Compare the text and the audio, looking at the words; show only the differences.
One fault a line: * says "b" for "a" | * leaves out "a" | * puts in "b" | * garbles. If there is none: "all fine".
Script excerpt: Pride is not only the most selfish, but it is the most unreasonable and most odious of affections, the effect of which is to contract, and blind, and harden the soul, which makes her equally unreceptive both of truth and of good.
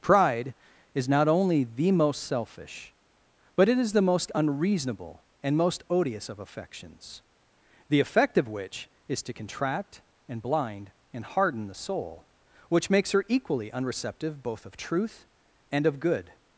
all fine